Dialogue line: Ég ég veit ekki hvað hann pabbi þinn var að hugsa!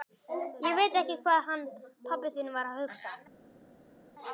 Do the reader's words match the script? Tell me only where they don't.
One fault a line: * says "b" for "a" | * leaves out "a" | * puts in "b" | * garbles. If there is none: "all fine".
* leaves out "ég"